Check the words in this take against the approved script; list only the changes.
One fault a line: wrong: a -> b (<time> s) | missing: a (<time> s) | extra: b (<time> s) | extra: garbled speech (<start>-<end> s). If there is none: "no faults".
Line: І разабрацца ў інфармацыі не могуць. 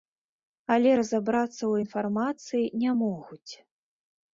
wrong: І -> Але (0.8 s)